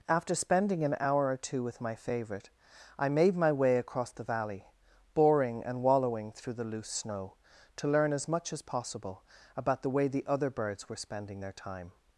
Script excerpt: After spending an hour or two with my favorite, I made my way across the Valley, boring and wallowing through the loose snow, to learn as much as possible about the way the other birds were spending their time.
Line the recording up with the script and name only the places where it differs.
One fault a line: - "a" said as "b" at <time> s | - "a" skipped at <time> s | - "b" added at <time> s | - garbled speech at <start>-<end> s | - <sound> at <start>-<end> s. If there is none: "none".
none